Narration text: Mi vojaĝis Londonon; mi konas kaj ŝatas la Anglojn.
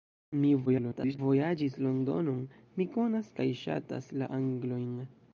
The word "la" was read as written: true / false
true